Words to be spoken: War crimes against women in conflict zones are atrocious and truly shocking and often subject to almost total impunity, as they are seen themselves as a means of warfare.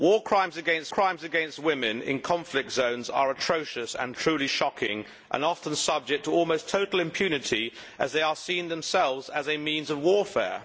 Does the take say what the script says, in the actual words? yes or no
no